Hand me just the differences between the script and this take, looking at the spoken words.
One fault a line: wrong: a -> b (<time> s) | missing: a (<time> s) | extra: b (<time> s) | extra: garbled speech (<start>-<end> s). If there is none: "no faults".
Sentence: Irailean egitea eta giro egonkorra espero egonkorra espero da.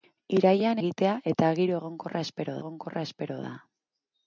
no faults